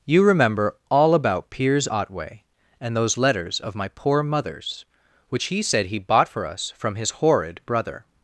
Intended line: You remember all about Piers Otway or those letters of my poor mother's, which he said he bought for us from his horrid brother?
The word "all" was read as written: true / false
true